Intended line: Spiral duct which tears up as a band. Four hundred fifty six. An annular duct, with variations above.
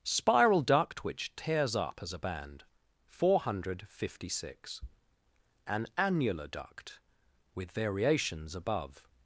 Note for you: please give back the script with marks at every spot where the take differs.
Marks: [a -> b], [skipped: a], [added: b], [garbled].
Spiral duct which tears up as a band. Four hundred fifty six. An annular duct, with variations above.